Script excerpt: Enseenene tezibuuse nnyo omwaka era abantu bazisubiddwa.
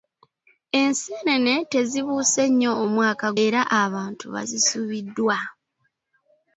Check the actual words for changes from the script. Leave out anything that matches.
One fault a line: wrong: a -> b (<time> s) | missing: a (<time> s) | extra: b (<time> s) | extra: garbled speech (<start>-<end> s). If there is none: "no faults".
no faults